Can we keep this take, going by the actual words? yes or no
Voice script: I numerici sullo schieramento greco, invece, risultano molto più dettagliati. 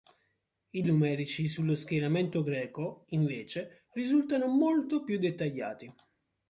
yes